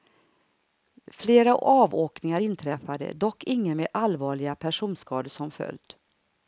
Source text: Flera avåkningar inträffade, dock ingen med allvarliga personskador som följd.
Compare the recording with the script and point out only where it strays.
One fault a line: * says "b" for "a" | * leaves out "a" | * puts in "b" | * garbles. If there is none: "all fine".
all fine